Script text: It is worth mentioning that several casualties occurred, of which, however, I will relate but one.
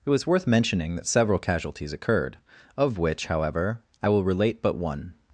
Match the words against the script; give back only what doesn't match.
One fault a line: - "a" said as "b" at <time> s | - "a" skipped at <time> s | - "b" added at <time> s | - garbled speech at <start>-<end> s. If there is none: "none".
- "is" said as "was" at 0.1 s